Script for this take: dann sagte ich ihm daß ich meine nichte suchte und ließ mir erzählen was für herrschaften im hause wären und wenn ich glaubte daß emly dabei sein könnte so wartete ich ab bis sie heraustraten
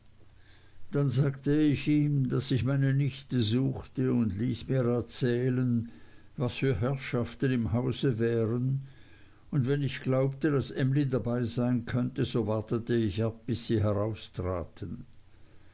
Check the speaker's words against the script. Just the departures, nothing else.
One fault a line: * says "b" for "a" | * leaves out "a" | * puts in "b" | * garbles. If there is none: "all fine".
all fine